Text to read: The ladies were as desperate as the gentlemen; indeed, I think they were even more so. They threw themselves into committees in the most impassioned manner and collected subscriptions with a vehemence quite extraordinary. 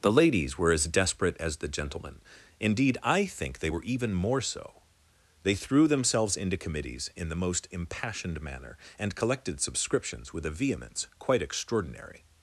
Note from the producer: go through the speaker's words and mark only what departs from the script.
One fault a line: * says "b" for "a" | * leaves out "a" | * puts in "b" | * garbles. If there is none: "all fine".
all fine